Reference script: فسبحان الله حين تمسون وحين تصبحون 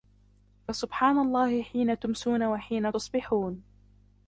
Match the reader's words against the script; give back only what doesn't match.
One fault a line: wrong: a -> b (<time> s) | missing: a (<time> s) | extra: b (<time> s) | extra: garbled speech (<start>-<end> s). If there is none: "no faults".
no faults